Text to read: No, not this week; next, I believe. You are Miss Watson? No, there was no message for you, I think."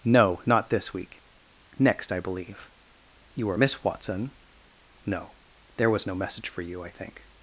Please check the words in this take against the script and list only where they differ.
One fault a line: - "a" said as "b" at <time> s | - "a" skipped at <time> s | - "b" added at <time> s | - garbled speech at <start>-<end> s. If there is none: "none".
none